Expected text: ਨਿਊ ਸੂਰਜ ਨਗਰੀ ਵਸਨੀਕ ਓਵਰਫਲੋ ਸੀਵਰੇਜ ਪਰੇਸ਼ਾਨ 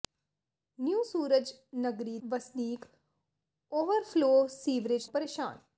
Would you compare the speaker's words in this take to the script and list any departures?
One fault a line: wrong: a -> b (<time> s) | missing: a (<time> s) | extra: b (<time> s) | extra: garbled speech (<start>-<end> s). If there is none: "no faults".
no faults